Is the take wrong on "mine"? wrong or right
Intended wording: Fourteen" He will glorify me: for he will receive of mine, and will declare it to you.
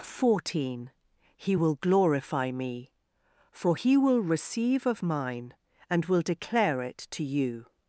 right